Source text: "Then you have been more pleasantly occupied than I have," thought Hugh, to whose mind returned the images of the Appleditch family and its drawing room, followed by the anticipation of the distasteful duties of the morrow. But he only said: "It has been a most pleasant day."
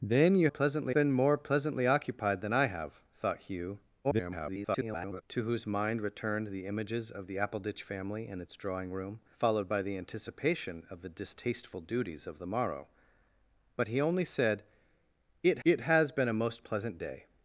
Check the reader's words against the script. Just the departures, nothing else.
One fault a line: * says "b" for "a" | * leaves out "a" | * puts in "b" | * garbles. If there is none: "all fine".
* says "pleasantly" for "have"
* garbles
* puts in "it"